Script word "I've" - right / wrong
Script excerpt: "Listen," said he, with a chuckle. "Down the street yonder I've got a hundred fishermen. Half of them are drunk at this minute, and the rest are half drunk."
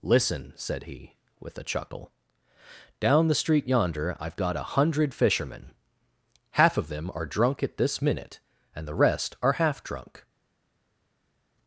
right